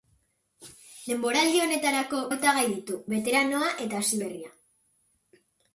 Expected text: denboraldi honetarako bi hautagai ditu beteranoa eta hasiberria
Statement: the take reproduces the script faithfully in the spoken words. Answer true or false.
false